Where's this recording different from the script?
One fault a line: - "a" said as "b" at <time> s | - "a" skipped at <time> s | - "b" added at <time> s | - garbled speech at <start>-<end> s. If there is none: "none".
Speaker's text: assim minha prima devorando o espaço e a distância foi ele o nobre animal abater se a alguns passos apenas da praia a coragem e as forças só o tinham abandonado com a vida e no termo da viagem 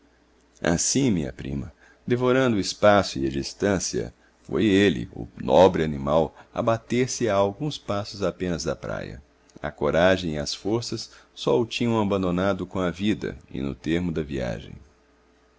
none